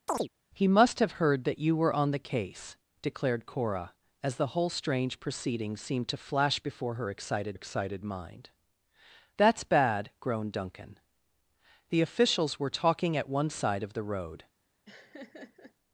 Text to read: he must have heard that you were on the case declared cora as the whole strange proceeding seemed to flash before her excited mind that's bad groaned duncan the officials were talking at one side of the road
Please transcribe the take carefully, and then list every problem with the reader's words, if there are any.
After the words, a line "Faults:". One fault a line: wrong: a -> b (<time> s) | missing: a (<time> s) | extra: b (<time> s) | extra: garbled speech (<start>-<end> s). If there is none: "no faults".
he must have heard that you were on the case declared cora as the whole strange proceeding seemed to flash before her excited excited mind that's bad groaned duncan the officials were talking at one side of the road
Faults:
extra: excited (7.5 s)